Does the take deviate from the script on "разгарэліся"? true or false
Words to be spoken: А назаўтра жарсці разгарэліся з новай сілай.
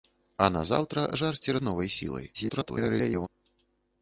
true